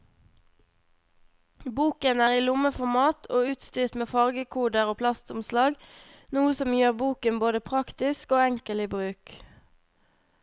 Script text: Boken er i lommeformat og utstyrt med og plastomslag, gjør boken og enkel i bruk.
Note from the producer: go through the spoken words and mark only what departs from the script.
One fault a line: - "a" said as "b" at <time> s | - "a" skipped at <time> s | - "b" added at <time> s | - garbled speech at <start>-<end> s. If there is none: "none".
- "fargekoder" added at 4.1 s
- "noe som" added at 6.4 s
- "både praktisk" added at 7.4 s